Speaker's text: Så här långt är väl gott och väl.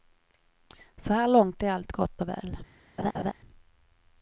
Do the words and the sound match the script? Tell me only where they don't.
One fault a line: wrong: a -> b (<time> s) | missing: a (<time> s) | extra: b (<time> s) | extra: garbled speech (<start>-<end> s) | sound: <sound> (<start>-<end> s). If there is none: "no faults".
wrong: väl -> allt (1.7 s)
sound: laugh (3.0-3.3 s)